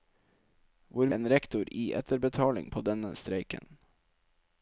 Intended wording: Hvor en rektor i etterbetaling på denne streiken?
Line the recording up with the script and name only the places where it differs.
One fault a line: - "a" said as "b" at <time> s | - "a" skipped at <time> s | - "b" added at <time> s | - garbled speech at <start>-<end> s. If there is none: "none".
none